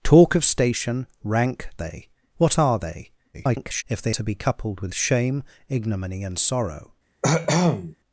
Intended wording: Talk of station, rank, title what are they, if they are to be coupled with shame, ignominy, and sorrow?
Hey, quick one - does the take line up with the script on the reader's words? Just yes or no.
no